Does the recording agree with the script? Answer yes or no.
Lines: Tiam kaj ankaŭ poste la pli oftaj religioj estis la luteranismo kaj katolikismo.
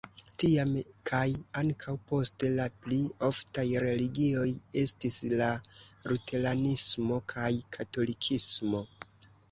yes